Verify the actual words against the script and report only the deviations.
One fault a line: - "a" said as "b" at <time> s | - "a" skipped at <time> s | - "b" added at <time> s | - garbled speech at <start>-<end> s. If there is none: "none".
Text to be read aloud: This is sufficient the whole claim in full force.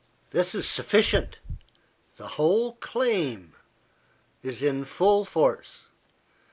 - "is" added at 4.4 s